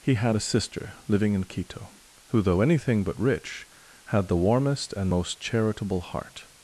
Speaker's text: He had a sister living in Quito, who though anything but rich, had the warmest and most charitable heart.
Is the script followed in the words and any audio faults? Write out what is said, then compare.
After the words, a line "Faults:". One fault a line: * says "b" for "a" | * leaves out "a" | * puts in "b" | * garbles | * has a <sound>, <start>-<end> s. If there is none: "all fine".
He had a sister living in Quito, who though anything but rich, had the warmest and most charitable heart.
Faults:
all fine